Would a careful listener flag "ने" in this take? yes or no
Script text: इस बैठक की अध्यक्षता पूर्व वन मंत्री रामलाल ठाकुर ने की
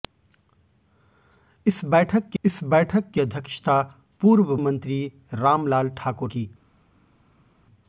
yes